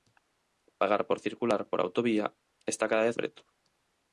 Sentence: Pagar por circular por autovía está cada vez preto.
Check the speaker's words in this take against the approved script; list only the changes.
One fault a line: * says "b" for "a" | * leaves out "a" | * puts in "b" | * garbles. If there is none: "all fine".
all fine